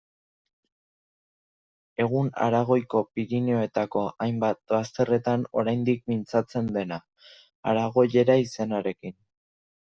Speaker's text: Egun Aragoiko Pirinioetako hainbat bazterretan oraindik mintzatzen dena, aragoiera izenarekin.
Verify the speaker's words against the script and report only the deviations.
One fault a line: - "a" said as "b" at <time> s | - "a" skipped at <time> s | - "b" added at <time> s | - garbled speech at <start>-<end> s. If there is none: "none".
none